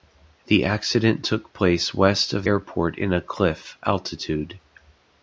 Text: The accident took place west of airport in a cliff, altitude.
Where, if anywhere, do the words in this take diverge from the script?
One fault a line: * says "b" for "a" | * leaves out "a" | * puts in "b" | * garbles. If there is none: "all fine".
all fine